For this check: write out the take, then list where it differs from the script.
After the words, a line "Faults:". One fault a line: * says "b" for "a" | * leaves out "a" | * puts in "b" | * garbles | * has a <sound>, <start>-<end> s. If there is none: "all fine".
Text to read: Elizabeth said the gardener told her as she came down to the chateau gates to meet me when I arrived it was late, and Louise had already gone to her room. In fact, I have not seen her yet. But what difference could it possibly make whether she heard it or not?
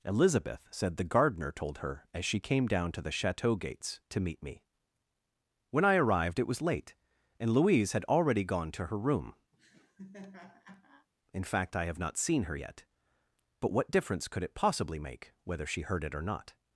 Elizabeth said the gardener told her as she came down to the chateau gates to meet me when I arrived it was late, and Louise had already gone to her room. In fact, I have not seen her yet. But what difference could it possibly make whether she heard it or not?
Faults:
* has a laugh, 9.5-11.1 s